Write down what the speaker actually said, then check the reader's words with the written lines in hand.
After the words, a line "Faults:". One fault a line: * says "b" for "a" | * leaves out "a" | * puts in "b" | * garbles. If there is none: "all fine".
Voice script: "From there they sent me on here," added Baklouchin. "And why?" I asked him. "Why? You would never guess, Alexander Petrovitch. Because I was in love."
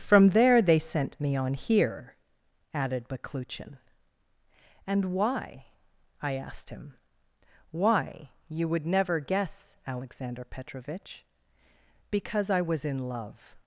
"From there they sent me on here," added Baklouchin. "And why?" I asked him. "Why? You would never guess, Alexander Petrovitch. Because I was in love."
Faults:
all fine